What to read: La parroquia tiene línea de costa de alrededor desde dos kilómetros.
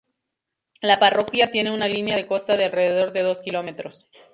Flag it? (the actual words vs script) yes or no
yes